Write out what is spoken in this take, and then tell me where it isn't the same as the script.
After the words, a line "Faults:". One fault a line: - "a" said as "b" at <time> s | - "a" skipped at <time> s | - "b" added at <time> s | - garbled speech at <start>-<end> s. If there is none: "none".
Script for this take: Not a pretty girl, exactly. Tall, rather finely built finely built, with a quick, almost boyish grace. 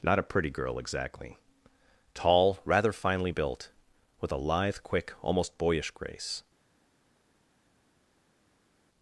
Not a pretty girl, exactly. Tall, rather finely built, with a lithe, quick, almost boyish grace.
Faults:
- "finely built" skipped at 3.7 s
- "lithe" added at 4.4 s